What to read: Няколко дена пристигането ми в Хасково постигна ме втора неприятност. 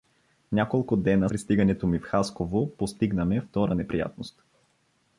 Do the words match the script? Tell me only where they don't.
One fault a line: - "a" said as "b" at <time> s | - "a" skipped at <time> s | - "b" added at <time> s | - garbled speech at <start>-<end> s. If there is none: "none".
none